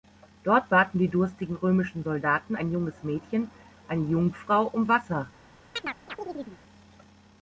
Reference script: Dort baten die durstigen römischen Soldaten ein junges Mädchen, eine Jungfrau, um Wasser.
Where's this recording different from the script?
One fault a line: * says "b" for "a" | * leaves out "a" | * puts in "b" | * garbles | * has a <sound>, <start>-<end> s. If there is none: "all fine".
* has a chirp, 5.8-6.6 s